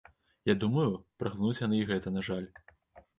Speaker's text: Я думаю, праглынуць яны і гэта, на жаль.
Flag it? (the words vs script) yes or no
no